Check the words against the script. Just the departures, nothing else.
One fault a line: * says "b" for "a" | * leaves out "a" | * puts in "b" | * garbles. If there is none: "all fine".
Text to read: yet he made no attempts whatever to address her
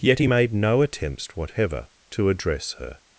all fine